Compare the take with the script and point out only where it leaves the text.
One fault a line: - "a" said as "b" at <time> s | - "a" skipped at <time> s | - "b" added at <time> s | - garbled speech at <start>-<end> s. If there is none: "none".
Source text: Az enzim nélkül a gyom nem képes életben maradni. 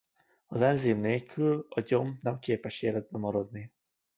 none